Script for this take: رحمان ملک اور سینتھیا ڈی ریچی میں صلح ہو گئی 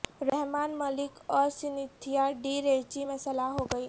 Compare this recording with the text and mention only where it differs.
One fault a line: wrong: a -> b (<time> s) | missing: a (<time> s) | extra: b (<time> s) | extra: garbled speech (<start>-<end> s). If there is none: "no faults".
no faults